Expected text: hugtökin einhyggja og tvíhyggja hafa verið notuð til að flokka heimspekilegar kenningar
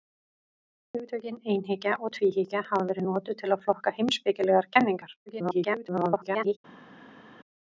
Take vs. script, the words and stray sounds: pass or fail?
fail